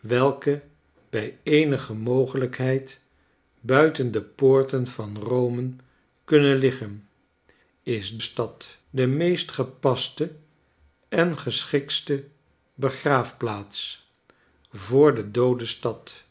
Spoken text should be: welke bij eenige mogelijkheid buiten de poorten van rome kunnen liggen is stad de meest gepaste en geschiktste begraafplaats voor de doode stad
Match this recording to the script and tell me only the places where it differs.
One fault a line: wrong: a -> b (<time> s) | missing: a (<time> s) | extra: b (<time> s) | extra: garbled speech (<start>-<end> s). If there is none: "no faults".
no faults